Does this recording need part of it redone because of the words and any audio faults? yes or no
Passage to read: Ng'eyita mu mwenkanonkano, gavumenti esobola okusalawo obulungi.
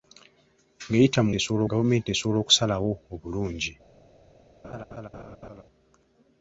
yes